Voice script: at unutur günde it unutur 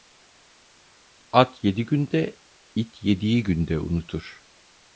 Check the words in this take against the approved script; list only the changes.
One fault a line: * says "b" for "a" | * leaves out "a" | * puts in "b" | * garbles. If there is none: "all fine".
* says "yedi" for "unutur"
* puts in "yediği günde"